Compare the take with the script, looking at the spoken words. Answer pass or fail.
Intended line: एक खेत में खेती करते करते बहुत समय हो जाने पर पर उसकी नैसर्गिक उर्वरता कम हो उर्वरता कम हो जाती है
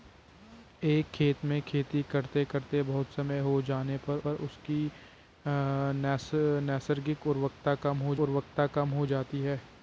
pass